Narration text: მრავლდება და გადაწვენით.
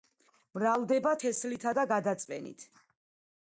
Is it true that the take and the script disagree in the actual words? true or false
true